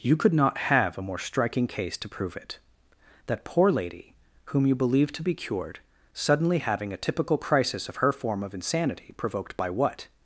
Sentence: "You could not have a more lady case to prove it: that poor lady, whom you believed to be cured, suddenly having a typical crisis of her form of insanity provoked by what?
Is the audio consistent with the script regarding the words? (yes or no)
no